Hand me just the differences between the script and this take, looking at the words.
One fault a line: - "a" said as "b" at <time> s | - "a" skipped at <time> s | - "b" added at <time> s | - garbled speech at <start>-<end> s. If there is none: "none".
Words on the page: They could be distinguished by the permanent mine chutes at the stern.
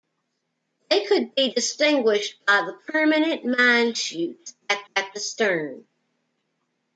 - "at" added at 5.0 s